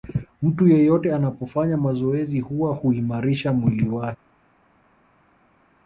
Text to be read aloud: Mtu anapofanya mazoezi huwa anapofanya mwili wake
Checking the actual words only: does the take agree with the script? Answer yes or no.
no